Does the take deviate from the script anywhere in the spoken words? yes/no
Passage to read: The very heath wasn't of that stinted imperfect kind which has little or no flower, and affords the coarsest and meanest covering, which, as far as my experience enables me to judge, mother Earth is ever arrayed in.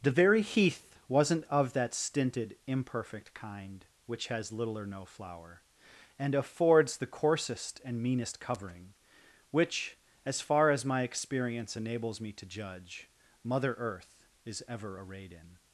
no